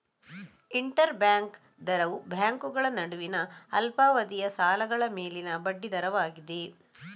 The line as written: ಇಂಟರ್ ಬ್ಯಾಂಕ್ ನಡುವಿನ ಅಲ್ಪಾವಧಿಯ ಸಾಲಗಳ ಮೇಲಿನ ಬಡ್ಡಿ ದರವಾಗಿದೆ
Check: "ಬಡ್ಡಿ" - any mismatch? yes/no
no